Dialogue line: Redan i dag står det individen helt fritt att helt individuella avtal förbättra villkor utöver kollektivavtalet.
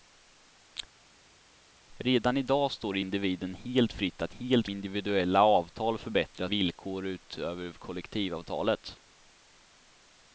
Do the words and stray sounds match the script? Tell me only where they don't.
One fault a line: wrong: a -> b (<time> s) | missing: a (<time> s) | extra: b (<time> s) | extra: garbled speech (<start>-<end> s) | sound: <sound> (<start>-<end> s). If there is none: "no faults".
no faults